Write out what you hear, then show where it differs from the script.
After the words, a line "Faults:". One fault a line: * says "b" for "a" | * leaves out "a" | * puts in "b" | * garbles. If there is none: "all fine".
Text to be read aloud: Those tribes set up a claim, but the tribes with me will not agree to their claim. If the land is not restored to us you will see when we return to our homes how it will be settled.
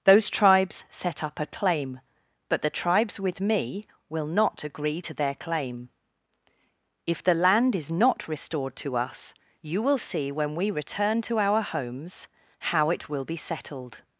Those tribes set up a claim, but the tribes with me will not agree to their claim. If the land is not restored to us you will see when we return to our homes how it will be settled.
Faults:
all fine